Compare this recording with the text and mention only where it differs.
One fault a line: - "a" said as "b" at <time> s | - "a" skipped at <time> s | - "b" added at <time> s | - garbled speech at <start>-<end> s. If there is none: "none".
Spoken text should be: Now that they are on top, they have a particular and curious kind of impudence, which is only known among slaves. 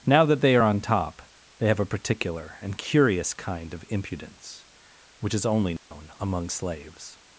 none